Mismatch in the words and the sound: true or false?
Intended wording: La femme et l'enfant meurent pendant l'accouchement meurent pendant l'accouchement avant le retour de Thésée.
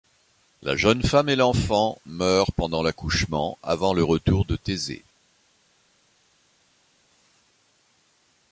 true